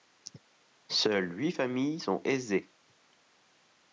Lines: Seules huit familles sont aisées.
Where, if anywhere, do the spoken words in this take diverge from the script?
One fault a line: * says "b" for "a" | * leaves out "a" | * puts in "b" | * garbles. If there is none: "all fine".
all fine